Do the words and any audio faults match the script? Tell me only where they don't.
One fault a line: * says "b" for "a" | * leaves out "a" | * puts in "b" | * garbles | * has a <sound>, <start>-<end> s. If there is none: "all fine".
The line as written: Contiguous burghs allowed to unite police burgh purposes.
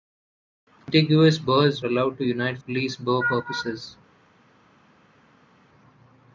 all fine